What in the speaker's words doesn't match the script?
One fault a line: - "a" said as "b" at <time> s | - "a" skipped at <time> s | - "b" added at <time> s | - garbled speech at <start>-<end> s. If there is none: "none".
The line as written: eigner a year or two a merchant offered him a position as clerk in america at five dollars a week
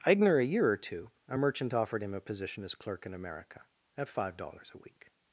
none